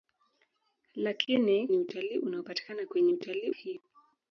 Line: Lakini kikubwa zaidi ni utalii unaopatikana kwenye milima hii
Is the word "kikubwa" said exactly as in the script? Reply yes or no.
no